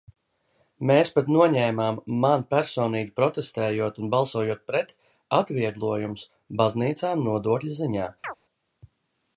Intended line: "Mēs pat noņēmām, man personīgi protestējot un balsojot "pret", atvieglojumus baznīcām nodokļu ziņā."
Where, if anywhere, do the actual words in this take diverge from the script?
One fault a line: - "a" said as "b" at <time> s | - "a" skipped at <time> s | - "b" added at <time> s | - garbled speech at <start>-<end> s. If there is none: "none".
none